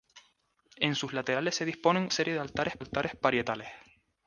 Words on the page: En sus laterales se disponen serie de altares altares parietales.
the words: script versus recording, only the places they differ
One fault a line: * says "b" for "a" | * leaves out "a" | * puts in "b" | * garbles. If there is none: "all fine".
all fine